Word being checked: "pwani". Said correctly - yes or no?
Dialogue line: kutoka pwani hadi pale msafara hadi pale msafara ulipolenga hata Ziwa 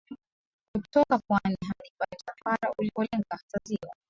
yes